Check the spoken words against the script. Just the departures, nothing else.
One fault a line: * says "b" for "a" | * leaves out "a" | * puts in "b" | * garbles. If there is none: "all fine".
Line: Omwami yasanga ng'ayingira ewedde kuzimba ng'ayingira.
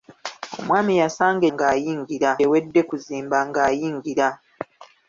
all fine